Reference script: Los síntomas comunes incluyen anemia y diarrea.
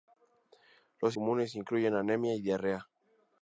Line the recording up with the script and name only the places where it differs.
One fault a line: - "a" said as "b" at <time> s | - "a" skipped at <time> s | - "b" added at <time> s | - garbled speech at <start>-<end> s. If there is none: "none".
- "síntomas" skipped at 1.1 s